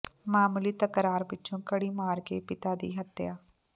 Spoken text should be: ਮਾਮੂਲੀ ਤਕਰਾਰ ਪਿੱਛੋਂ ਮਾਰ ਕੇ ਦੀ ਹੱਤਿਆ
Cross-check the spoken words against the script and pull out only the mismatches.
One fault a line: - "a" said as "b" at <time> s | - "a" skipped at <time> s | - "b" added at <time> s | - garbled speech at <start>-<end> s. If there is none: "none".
- "ਕੜੀ" added at 1.6 s
- "ਪਿਤਾ" added at 2.4 s